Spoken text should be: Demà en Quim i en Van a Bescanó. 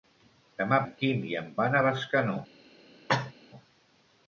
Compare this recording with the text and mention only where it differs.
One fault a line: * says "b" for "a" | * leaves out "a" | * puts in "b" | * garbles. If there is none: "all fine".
all fine